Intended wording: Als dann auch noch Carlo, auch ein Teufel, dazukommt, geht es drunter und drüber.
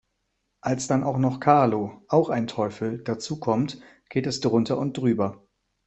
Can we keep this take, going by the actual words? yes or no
yes